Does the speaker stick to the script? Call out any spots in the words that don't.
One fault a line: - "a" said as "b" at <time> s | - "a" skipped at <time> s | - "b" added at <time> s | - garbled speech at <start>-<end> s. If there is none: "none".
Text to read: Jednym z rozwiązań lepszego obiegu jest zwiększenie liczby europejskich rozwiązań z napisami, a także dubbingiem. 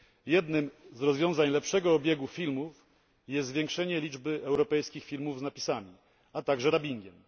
- "filmów" added at 2.3 s
- "rozwiązań" said as "filmów" at 5.0 s